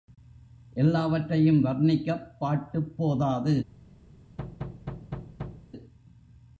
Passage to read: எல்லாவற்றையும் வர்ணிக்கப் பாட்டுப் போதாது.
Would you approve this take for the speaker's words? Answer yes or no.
yes